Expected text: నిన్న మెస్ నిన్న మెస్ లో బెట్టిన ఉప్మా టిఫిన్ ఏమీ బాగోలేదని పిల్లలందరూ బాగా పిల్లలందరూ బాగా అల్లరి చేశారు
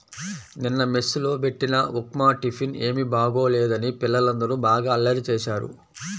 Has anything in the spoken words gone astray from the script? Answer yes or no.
yes